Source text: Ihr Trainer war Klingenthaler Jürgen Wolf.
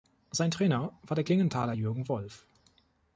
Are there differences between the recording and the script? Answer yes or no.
yes